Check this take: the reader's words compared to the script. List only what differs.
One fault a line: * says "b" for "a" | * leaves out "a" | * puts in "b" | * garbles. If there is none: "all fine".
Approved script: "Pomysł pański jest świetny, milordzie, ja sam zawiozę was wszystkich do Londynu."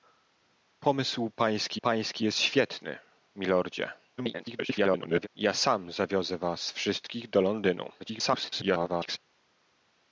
* puts in "pański"
* garbles
* garbles